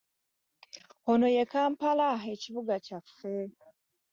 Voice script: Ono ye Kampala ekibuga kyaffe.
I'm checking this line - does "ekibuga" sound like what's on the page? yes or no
yes